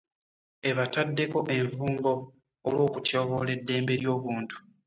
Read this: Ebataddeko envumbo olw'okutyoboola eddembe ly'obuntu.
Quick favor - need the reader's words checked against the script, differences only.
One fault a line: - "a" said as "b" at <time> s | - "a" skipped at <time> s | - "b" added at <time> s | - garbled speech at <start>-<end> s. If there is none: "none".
none